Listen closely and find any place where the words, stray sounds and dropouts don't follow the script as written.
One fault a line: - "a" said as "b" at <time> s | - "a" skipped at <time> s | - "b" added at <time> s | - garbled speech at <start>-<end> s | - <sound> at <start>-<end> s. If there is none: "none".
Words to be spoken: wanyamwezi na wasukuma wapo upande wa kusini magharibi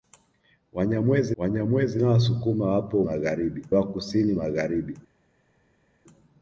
- "wanyamwezi" added at 1.4 s
- "upande" said as "magharibi" at 3.0 s